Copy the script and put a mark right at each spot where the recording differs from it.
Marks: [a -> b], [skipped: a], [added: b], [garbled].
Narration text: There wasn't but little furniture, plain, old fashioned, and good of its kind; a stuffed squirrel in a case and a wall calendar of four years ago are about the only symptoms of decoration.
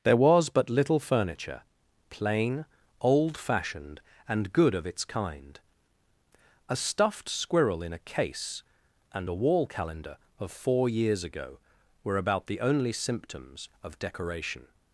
There [wasn't -> was] but little furniture, plain, old fashioned, and good of its kind; a stuffed squirrel in a case and a wall calendar of four years ago [are -> were] about the only symptoms of decoration.